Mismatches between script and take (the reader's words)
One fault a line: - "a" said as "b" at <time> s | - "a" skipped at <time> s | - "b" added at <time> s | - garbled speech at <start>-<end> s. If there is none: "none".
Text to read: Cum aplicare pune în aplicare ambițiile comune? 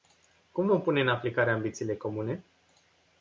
- "aplicare" said as "vom" at 0.7 s